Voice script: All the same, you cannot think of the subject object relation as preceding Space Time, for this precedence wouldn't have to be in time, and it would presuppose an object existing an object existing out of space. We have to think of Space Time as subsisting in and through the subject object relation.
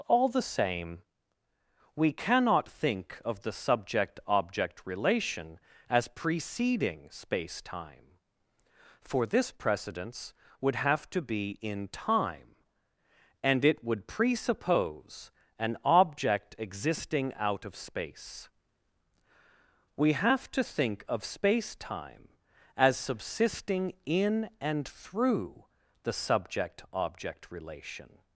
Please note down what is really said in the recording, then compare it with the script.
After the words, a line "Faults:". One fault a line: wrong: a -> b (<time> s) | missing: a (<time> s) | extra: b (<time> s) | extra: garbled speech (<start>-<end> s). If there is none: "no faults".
All the same, we cannot think of the subject object relation as preceding Space Time, for this precedence would have to be in time, and it would presuppose an object existing out of space. We have to think of Space Time as subsisting in and through the subject object relation.
Faults:
wrong: you -> we (1.9 s)
wrong: wouldn't -> would (10.6 s)
missing: an object existing (17.3 s)